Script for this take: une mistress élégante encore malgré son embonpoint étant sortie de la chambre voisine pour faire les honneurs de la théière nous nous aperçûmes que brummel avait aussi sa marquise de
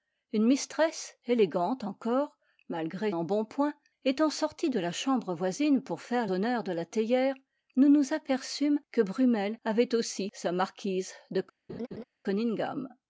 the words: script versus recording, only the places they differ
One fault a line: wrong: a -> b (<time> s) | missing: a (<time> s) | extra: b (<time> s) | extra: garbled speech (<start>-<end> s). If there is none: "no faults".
missing: son (3.1 s)
missing: les (6.2 s)